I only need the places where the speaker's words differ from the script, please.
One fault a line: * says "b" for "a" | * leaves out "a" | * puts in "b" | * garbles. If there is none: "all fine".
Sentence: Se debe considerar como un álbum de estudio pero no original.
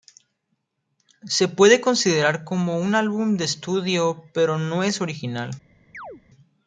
* says "puede" for "debe"
* puts in "es"